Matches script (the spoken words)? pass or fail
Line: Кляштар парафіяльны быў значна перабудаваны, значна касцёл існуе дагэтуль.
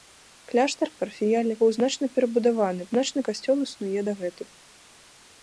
pass